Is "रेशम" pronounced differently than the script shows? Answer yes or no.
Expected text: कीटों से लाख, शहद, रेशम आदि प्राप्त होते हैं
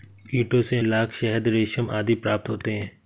no